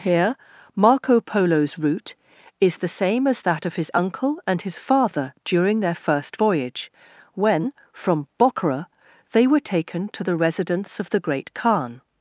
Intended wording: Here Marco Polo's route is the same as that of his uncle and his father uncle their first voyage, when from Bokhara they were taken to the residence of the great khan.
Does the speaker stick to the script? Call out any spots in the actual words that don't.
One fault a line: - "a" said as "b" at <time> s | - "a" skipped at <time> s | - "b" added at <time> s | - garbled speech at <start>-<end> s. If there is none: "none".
- "uncle" said as "during" at 5.4 s